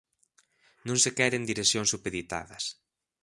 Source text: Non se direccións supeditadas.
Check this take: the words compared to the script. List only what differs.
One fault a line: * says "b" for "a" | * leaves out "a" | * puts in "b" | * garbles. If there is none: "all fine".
* puts in "queren"